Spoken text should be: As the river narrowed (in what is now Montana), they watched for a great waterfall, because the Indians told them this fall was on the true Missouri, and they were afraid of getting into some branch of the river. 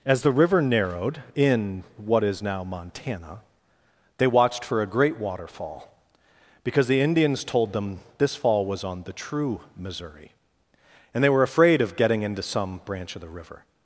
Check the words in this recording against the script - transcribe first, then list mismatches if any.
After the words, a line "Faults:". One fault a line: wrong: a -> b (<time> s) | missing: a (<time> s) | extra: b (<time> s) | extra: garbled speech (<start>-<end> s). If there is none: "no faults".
As the river narrowed (in what is now Montana), they watched for a great waterfall, because the Indians told them this fall was on the true Missouri, and they were afraid of getting into some branch of the river.
Faults:
no faults